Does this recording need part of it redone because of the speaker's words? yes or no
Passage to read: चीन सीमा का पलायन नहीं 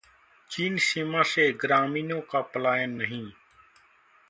yes